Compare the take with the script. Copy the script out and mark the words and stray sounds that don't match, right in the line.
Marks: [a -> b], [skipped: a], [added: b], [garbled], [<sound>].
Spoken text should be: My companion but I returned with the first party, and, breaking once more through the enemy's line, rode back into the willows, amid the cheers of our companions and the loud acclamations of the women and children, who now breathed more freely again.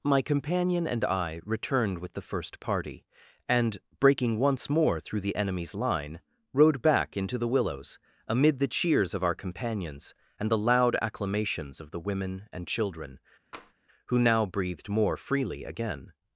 My companion [but -> and] I returned with the first party, and, breaking once more through the enemy's line, rode back into the willows, amid the cheers of our companions and the loud acclamations of the women and children, [tap] who now breathed more freely again.